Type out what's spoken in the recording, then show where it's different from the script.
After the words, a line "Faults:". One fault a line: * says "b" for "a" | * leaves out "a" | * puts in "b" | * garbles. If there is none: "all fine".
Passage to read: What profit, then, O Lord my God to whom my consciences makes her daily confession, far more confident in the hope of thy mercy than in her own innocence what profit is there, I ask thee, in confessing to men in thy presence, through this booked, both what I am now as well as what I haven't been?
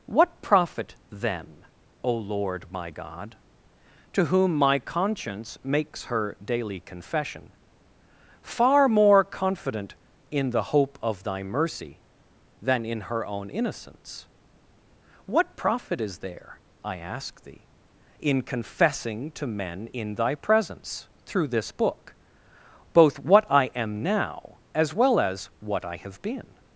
What profit, then, O Lord my God to whom my conscience makes her daily confession, far more confident in the hope of thy mercy than in her own innocence what profit is there, I ask thee, in confessing to men in thy presence, through this book, both what I am now as well as what I have been?
Faults:
* says "conscience" for "consciences"
* says "book" for "booked"
* says "have" for "haven't"